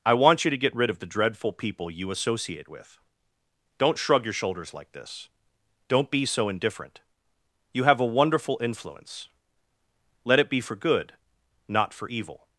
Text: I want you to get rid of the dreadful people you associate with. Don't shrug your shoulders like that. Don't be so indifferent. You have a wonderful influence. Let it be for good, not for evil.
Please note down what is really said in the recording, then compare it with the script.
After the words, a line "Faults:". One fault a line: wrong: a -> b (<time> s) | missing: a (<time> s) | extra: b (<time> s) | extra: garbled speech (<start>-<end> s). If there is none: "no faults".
I want you to get rid of the dreadful people you associate with. Don't shrug your shoulders like this. Don't be so indifferent. You have a wonderful influence. Let it be for good, not for evil.
Faults:
wrong: that -> this (4.9 s)